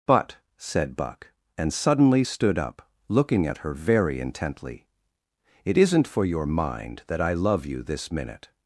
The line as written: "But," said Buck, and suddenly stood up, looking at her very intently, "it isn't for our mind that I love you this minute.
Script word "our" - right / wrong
wrong